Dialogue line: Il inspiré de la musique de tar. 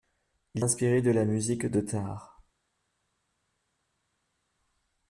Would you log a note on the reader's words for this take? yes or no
no